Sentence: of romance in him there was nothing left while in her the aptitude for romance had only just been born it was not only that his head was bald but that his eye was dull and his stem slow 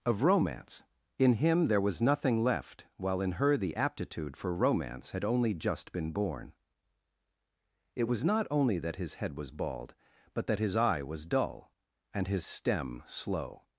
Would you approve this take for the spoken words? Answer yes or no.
yes